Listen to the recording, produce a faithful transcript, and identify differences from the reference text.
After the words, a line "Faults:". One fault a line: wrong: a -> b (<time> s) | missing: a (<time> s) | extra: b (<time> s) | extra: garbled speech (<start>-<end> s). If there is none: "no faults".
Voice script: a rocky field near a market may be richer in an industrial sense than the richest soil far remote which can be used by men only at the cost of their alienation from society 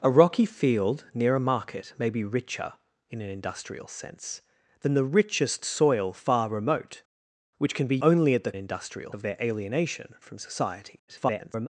a rocky field near a market may be richer in an industrial sense than the richest soil far remote which can be only at the industrial of their alienation from society [garbled]
Faults:
missing: used by men (8.0 s)
wrong: cost -> industrial (8.5 s)
extra: garbled speech (11.1-11.7 s)